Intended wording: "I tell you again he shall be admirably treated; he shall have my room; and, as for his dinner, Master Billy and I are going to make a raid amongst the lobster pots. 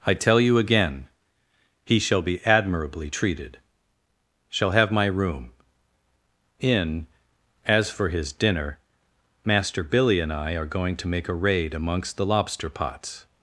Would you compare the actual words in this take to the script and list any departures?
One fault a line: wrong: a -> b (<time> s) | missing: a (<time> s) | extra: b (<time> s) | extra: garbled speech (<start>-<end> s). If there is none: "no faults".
missing: he (3.6 s)
wrong: and -> in (6.6 s)